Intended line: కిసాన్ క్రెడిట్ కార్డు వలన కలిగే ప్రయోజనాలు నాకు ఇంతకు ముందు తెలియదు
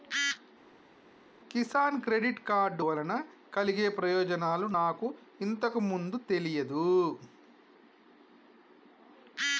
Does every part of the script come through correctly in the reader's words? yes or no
yes